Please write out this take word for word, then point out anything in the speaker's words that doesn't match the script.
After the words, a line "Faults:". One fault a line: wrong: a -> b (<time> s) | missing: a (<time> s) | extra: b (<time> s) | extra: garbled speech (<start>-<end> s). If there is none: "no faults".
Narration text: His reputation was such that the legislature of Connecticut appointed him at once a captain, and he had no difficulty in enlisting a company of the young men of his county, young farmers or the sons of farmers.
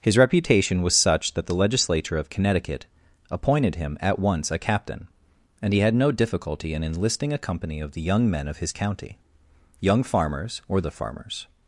His reputation was such that the legislature of Connecticut appointed him at once a captain, and he had no difficulty in enlisting a company of the young men of his county, young farmers or the of farmers.
Faults:
missing: sons (10.9 s)